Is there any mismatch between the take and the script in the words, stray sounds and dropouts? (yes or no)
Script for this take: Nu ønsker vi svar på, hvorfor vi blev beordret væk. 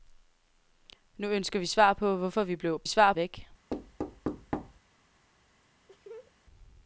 yes